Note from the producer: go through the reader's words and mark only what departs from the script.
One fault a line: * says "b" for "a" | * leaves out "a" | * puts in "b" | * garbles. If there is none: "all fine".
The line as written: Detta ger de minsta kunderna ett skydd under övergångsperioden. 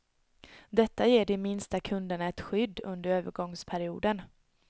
all fine